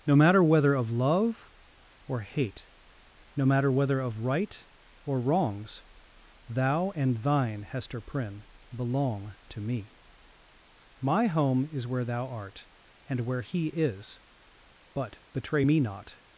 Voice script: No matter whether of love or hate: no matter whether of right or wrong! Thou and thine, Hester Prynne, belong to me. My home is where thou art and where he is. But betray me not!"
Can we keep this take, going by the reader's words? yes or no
no